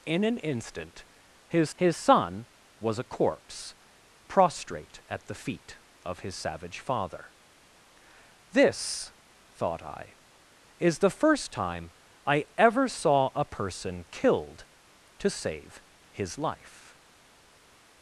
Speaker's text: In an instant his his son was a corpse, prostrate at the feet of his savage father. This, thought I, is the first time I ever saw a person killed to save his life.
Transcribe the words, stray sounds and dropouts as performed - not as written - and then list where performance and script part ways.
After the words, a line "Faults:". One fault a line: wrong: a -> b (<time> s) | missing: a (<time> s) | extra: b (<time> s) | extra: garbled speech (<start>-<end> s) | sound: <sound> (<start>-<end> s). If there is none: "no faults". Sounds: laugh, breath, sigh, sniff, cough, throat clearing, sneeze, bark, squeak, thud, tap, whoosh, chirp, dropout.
In an instant his his son was a corpse, prostrate at the feet of his savage father. This, thought I, is the first time I ever saw a person killed to save his life.
Faults:
no faults